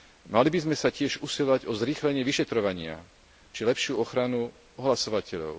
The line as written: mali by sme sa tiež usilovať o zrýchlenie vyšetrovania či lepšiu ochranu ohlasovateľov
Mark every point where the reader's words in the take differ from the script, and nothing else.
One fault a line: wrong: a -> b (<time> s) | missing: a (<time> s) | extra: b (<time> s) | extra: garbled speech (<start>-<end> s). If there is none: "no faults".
no faults